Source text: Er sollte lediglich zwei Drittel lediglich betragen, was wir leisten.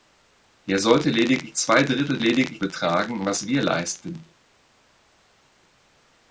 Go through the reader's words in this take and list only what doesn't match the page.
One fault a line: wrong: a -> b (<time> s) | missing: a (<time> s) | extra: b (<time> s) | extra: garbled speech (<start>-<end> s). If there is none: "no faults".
no faults